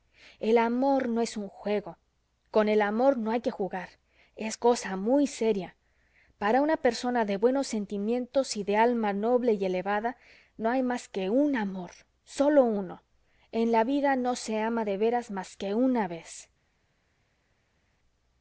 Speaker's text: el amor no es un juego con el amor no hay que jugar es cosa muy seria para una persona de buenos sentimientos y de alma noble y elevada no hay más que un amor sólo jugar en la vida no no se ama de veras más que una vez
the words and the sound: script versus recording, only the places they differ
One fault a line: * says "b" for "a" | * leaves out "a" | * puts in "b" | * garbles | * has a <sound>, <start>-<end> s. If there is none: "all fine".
* says "uno" for "jugar"
* leaves out "no"